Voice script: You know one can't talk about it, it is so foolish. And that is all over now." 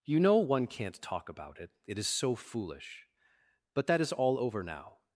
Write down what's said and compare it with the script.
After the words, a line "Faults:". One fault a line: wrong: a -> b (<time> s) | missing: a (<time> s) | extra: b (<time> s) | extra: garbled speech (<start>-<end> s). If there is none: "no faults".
You know one can't talk about it, it is so foolish. But that is all over now."
Faults:
wrong: And -> But (3.8 s)